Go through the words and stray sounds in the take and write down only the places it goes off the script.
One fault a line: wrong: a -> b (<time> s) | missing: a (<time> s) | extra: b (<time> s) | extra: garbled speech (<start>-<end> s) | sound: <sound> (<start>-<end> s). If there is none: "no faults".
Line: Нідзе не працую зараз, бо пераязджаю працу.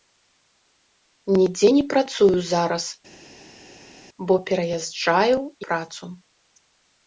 no faults